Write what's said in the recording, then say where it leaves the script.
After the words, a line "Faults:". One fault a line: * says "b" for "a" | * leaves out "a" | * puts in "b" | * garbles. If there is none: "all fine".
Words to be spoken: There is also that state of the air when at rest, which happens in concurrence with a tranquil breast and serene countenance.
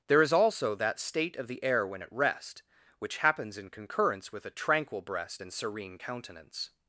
There is also that state of the air when at rest, which happens in concurrence with a tranquil breast and serene countenance.
Faults:
all fine